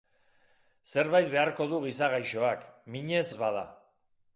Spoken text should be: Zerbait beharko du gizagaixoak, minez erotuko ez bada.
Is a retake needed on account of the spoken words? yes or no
yes